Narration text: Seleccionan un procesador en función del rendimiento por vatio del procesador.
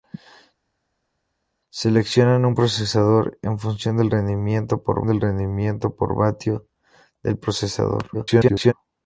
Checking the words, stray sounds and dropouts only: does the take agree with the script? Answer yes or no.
no